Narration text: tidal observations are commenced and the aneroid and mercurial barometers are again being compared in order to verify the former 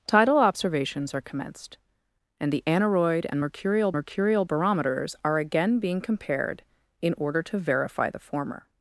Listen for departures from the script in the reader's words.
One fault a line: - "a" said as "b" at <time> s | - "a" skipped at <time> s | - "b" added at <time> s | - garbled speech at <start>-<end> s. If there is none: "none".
- "mercurial" added at 3.9 s